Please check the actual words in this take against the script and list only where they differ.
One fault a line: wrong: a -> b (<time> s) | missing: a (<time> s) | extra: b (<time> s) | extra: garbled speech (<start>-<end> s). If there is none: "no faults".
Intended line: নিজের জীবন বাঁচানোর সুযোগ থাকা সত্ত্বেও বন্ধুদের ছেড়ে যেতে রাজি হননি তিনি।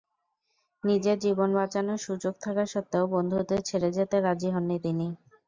no faults